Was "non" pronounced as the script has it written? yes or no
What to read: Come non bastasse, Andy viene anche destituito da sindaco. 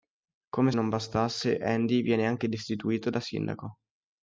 yes